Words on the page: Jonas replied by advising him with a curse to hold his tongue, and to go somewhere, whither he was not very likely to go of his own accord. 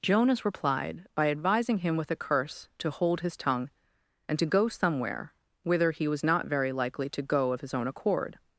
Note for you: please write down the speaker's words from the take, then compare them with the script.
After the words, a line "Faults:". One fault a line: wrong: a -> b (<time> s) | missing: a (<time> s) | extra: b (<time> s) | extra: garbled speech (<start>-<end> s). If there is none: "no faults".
Jonas replied by advising him with a curse to hold his tongue, and to go somewhere, whither he was not very likely to go of his own accord.
Faults:
no faults